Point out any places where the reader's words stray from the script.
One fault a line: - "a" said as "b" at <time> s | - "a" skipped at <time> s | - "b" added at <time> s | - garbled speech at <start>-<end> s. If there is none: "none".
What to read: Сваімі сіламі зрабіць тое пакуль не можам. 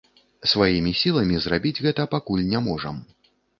- "тое" said as "гэта" at 1.9 s